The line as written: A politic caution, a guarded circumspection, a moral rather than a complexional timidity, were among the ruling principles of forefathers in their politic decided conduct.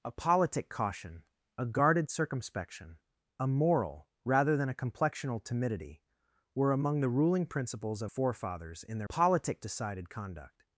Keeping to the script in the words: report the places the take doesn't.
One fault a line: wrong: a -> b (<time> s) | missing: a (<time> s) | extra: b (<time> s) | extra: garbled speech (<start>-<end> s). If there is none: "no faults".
no faults